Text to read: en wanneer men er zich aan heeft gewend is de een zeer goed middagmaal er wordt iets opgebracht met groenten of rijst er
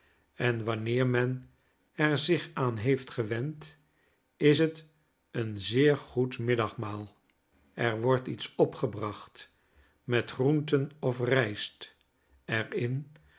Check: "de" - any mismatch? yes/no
yes